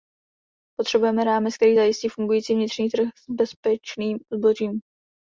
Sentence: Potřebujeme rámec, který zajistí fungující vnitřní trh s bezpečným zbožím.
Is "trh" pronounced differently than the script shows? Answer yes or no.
no